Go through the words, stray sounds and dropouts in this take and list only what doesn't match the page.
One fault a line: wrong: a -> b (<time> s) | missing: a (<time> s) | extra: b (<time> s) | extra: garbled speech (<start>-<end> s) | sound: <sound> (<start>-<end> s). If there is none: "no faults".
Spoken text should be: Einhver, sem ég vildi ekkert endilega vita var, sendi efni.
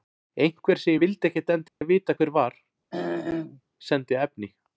sound: dropout (1.7-1.8 s)
extra: hver (2.2 s)
sound: throat clearing (2.9-3.6 s)